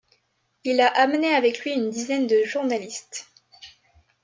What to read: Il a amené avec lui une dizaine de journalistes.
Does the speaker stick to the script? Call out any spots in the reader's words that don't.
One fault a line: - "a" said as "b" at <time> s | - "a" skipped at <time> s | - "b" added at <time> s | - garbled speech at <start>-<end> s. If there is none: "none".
none